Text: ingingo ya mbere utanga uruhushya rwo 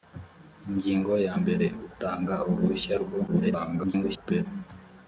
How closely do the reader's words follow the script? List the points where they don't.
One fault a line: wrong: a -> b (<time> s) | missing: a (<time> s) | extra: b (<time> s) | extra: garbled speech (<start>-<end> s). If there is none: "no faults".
extra: garbled speech (3.3-4.5 s)